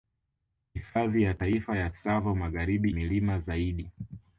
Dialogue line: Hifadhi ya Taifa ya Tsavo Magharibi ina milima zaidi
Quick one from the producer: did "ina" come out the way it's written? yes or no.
no